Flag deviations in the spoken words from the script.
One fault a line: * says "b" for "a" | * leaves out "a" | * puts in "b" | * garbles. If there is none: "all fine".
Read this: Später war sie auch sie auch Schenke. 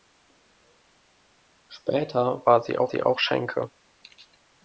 all fine